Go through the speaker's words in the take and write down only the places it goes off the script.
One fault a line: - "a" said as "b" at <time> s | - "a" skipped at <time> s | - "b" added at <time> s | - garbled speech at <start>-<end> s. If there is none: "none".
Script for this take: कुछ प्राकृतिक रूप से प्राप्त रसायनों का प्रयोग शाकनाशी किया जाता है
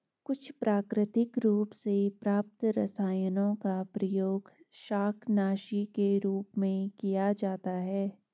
- "के रूप में" added at 5.9 s